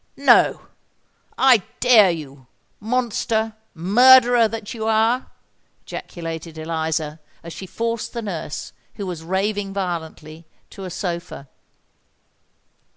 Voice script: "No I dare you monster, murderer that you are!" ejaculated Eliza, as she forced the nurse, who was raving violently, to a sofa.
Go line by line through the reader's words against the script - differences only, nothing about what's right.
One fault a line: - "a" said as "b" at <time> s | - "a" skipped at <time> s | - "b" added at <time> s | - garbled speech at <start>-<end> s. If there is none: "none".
none